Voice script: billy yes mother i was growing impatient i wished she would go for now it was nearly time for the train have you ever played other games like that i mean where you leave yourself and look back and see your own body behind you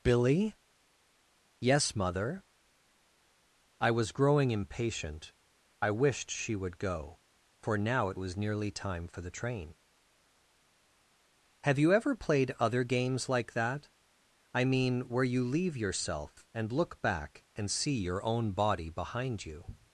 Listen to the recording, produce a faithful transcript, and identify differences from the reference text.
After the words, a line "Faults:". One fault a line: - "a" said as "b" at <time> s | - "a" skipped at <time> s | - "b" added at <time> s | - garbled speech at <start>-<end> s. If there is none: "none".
billy yes mother i was growing impatient i wished she would go for now it was nearly time for the train have you ever played other games like that i mean where you leave yourself and look back and see your own body behind you
Faults:
none